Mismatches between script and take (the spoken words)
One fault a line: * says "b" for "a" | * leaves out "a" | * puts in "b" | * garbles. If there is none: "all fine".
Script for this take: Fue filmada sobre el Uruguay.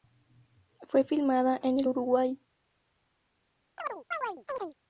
* says "en" for "sobre"